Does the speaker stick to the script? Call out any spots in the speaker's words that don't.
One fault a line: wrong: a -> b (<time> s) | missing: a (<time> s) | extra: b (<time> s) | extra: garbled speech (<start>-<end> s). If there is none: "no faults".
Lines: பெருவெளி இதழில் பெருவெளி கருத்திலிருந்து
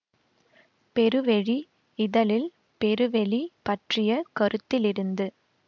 extra: பற்றிய (3.6 s)